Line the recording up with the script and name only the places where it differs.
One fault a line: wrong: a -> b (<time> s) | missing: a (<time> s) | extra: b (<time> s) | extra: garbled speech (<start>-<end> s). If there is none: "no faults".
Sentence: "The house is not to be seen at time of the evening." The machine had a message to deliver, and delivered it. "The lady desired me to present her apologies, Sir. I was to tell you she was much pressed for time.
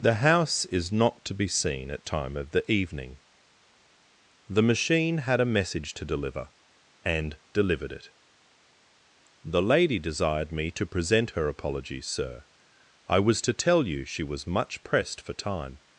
no faults